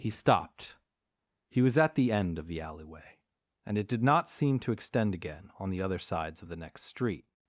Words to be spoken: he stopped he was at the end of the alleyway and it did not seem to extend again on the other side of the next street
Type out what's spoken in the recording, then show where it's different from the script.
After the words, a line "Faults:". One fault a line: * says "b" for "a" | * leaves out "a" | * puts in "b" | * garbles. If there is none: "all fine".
he stopped he was at the end of the alleyway and it did not seem to extend again on the other sides of the next street
Faults:
* says "sides" for "side"